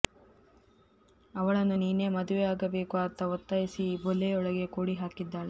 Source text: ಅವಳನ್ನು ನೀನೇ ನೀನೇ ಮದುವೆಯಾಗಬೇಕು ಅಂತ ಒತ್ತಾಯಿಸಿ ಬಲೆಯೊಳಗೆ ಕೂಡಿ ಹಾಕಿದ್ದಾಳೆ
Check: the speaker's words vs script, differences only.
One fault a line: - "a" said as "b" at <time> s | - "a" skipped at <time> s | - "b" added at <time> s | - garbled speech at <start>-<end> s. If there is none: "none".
- "ನೀನೇ" skipped at 2.1 s
- "ಈ" added at 3.9 s